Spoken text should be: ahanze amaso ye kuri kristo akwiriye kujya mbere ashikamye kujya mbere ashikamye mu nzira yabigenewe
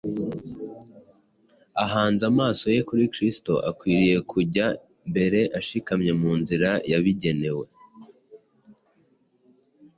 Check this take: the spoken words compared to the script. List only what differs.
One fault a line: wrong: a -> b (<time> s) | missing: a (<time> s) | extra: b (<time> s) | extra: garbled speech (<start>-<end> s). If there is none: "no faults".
missing: kujya mbere ashikamye (6.1 s)